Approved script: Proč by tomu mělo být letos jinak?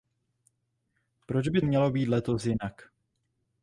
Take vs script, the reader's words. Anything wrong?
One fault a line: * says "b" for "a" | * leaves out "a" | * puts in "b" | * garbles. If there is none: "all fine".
* leaves out "tomu"